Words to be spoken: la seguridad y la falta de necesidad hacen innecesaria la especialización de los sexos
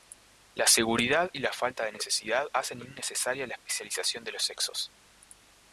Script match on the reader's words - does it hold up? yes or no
yes